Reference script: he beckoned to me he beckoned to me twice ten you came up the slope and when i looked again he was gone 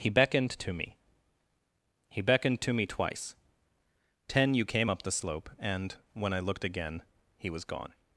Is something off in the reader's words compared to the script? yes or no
no